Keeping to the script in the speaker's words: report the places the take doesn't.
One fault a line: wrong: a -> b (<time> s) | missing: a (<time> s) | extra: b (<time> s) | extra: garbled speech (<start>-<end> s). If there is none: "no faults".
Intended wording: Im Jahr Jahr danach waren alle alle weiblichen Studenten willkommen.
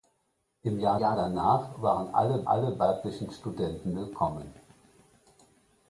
no faults